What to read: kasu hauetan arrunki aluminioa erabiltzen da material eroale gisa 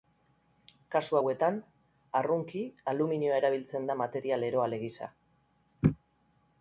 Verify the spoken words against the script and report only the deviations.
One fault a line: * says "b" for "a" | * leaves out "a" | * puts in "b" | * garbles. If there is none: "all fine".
all fine